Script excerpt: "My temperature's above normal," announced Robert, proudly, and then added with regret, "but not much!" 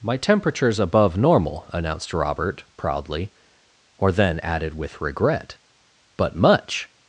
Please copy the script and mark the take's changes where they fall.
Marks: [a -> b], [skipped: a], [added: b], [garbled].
"My temperature's above normal," announced Robert, proudly, [and -> or] then added with regret, "but [skipped: not] much!"